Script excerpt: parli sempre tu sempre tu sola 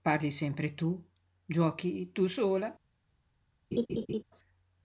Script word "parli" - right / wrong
right